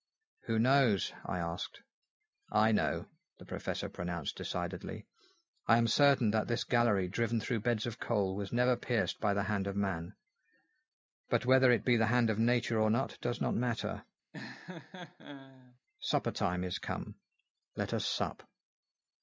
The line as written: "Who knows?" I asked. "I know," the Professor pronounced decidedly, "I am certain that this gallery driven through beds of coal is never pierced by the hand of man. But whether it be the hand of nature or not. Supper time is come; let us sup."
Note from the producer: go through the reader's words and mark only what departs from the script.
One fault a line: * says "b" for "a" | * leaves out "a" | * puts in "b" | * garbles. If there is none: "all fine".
* says "was" for "is"
* puts in "does not matter"